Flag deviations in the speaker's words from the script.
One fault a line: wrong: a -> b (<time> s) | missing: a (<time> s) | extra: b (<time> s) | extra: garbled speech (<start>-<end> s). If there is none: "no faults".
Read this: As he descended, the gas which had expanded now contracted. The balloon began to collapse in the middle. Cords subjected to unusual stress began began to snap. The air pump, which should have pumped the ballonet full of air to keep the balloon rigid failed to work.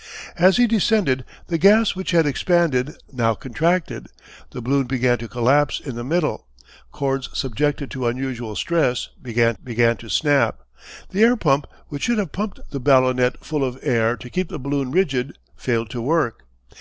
no faults